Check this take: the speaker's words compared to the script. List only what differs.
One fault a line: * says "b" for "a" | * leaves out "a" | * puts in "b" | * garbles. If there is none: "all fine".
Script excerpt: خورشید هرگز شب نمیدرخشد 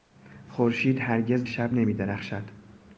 all fine